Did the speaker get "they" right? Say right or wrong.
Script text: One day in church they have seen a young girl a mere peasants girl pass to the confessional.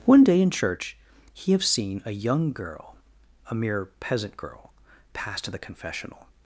wrong